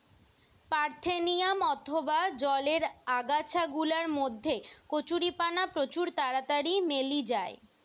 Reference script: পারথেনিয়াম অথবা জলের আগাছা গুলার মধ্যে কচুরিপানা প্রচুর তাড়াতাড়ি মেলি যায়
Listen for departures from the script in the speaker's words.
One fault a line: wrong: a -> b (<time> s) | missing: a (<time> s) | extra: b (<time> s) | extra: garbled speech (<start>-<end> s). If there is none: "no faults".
no faults